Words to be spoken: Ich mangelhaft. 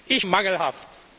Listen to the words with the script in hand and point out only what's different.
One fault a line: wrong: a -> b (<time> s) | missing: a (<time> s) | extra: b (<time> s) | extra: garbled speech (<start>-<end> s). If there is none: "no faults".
no faults